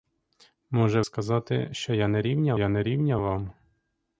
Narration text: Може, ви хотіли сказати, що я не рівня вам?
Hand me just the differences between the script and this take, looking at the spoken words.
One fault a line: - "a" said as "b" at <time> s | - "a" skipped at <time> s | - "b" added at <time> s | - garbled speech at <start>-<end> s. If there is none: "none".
- "ви хотіли сказати що" said as "сказати що я не рівня" at 1.0 s